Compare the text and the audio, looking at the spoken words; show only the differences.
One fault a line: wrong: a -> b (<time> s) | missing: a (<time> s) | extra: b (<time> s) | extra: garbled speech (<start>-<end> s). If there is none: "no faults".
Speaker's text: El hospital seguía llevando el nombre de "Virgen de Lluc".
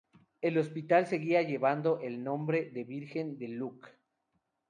no faults